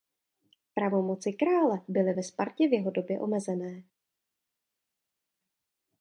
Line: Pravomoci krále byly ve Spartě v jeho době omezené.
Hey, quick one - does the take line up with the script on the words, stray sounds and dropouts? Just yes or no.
yes